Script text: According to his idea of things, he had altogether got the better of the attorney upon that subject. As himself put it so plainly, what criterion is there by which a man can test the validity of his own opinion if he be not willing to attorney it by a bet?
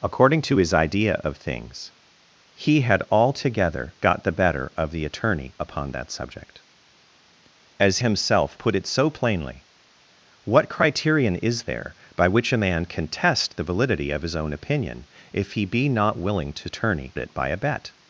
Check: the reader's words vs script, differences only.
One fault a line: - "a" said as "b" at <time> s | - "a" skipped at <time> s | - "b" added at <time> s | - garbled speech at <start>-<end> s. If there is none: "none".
none